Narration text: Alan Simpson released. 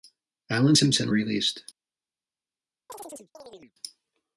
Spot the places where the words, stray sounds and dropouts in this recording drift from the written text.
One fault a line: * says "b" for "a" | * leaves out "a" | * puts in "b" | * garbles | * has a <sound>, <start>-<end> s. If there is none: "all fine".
* has a chirp, 2.9-3.7 s